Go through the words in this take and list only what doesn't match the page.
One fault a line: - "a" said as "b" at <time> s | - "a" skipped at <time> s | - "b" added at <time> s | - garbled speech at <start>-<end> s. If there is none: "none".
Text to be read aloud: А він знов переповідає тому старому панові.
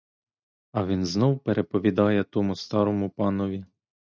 none